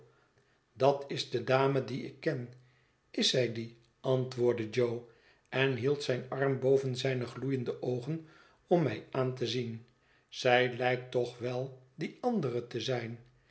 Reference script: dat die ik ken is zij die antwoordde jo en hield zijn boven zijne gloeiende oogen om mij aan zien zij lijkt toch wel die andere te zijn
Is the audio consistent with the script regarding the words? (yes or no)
no